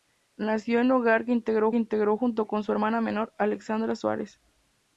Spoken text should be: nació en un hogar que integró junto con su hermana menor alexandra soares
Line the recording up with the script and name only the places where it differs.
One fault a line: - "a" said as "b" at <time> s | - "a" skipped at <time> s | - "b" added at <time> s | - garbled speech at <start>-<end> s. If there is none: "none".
- "integró" added at 1.7 s